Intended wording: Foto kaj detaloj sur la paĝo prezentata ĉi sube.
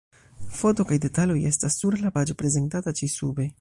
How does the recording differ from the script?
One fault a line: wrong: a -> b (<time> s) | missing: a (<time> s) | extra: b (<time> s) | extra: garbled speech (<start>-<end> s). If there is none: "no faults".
extra: estas (1.5 s)